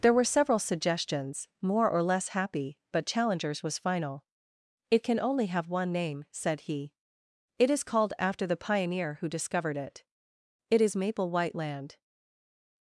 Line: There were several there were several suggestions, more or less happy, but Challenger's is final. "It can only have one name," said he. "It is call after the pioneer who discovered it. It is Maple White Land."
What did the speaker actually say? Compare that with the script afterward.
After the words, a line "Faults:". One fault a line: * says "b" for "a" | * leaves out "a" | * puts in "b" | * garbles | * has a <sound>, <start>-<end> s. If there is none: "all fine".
There were several suggestions, more or less happy, but Challenger's was final. "It can only have one name," said he. "It is called after the pioneer who discovered it. It is Maple White Land."
Faults:
* leaves out "there were several"
* says "was" for "is"
* says "called" for "call"